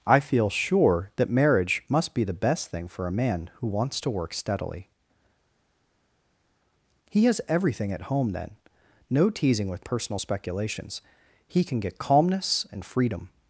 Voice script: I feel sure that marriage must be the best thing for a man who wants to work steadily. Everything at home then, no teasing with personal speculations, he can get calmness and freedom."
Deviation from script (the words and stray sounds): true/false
true